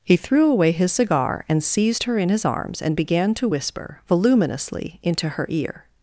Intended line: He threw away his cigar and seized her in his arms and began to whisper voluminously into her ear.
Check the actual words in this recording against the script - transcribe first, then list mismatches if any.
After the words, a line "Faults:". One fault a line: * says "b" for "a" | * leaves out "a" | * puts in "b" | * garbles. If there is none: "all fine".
He threw away his cigar and seized her in his arms and began to whisper voluminously into her ear.
Faults:
all fine